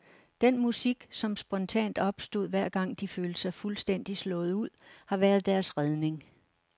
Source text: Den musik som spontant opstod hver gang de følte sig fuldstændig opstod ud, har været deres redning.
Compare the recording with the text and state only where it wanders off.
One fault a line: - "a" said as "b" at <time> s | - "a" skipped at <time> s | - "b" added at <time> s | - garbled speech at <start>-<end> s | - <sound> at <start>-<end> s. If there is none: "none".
- "opstod" said as "slået" at 4.2 s